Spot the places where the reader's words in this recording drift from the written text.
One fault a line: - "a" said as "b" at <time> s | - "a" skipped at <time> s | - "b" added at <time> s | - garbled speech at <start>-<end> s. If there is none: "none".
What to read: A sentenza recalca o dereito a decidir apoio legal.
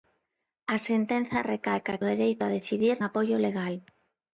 none